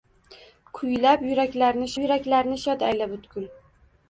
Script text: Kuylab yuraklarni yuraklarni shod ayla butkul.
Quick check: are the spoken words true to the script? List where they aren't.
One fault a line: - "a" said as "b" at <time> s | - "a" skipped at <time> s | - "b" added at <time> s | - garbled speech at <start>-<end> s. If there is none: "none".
none